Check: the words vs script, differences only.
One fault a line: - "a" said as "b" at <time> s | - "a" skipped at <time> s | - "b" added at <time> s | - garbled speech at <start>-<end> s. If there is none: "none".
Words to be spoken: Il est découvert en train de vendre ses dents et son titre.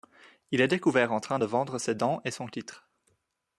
none